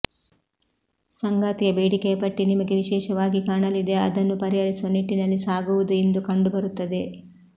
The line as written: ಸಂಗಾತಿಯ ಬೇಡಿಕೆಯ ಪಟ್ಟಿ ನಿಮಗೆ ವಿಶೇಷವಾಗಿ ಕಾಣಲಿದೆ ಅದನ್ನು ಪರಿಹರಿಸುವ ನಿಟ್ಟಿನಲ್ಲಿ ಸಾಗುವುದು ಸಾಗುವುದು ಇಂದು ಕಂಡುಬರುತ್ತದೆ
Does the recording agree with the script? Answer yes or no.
no